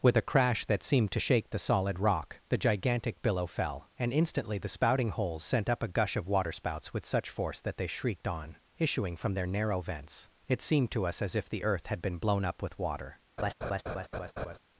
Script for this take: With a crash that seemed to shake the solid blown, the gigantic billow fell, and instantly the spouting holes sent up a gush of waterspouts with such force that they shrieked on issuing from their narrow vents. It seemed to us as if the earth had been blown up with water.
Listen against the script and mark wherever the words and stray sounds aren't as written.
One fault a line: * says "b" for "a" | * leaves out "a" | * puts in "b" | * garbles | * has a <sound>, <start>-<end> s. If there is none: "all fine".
* says "rock" for "blown"
* has a laugh, 13.4-14.6 s